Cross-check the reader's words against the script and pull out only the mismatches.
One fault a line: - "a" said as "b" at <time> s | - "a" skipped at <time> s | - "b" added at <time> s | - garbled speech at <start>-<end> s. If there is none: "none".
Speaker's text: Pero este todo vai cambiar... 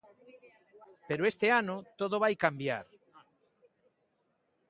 - "ano" added at 1.6 s